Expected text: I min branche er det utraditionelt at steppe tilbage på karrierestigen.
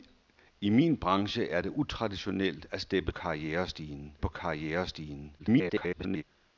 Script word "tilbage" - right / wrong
wrong